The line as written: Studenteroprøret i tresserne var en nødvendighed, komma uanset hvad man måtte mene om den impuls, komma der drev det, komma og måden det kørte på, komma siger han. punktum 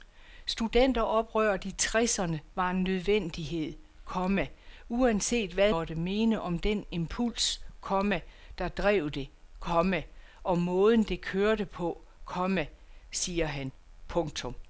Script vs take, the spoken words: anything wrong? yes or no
yes